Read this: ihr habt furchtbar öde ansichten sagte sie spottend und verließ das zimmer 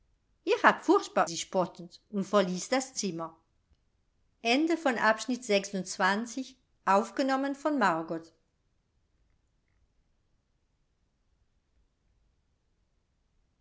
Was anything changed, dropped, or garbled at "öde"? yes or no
yes